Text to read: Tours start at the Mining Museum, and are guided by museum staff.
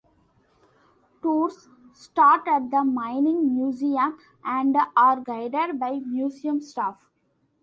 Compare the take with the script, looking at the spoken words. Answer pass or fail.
pass